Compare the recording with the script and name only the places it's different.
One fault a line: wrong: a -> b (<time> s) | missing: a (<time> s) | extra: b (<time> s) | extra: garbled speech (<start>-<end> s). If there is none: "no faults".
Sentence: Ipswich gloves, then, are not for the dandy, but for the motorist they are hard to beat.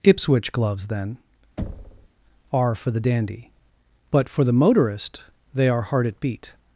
missing: not (2.7 s)
wrong: to -> at (6.1 s)